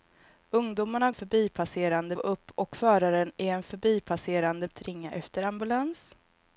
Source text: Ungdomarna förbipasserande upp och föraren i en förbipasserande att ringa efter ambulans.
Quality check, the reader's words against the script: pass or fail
pass